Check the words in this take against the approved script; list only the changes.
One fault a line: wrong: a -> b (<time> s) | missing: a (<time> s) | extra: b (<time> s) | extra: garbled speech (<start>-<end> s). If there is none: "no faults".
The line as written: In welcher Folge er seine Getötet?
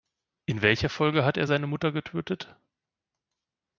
extra: hat (1.2 s)
extra: Mutter (1.7 s)